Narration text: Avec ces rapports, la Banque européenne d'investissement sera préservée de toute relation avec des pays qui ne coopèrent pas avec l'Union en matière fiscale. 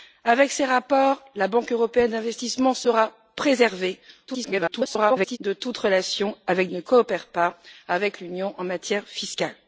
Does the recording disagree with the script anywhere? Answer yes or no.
yes